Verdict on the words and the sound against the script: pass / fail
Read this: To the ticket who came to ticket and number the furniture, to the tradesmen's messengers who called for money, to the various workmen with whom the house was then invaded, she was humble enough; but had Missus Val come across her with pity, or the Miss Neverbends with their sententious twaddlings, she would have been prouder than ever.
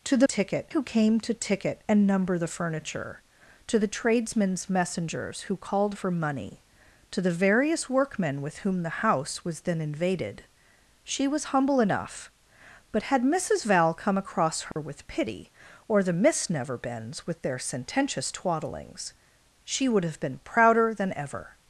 fail